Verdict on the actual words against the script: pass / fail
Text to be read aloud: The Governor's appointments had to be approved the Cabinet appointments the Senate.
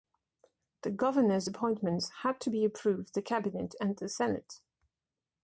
fail